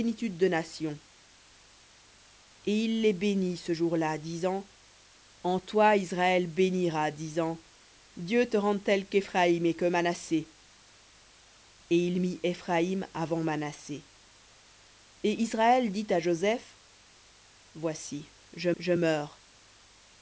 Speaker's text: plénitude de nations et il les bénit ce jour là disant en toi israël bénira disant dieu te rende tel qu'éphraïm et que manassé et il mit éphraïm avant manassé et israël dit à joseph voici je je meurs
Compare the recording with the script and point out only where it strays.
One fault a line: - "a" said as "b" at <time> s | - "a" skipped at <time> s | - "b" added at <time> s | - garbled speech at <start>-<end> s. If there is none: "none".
none